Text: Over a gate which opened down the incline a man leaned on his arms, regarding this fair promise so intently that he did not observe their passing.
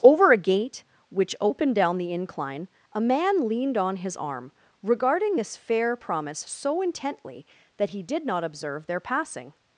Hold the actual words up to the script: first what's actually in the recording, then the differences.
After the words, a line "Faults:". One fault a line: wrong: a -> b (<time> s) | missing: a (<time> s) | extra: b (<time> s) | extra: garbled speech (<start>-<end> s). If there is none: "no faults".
Over a gate which opened down the incline a man leaned on his arm, regarding this fair promise so intently that he did not observe their passing.
Faults:
wrong: arms -> arm (4.2 s)